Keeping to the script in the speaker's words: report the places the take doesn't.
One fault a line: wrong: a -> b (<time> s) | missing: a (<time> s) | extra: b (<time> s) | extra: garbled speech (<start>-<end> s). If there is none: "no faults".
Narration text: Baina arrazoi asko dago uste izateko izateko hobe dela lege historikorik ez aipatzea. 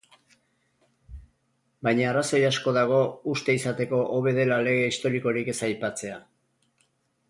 missing: izateko (4.0 s)